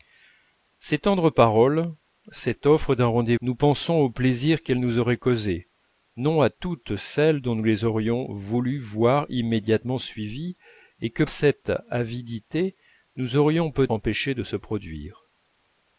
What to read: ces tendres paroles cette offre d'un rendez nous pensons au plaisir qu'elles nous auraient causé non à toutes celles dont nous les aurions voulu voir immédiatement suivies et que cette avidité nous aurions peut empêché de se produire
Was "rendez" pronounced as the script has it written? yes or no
yes